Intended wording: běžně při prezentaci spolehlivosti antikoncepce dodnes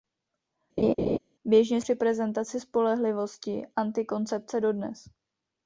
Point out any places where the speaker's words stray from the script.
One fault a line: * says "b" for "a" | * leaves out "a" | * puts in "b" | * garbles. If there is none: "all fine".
all fine